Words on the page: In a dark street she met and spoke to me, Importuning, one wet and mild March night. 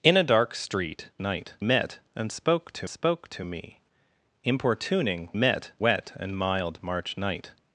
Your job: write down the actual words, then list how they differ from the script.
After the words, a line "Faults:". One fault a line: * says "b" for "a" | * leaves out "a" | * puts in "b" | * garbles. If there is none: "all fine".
In a dark street night met and spoke to spoke to me, Importuning, met wet and mild March night.
Faults:
* says "night" for "she"
* puts in "spoke to"
* says "met" for "one"